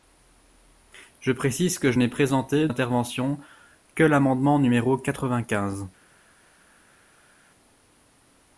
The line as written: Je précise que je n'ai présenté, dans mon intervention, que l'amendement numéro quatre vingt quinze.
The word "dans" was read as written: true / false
false